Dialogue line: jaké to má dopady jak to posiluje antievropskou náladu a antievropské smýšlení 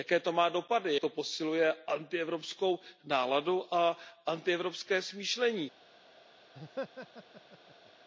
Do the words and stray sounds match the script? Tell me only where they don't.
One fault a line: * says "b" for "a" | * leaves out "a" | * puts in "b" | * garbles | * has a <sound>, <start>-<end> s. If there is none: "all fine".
* leaves out "jak"
* has a laugh, 6.5-7.9 s